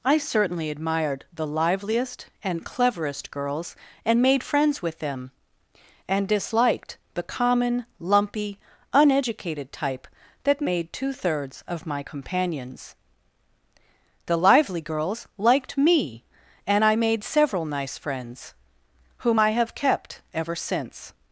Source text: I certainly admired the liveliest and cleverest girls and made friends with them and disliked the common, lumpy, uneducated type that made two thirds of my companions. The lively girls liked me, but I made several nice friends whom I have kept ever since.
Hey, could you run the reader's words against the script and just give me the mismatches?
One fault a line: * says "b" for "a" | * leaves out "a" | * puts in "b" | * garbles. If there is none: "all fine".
* says "and" for "but"